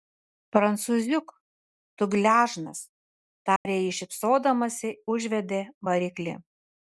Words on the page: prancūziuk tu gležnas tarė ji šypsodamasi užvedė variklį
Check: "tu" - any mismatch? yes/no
no